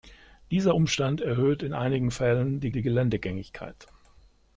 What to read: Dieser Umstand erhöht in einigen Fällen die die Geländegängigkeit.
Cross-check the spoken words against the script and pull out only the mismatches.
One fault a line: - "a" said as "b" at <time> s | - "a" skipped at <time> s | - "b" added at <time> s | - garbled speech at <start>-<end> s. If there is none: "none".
none